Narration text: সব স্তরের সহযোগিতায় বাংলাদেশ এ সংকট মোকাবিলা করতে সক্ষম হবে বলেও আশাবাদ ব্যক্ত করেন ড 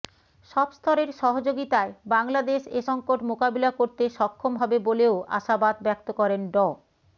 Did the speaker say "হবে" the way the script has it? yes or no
yes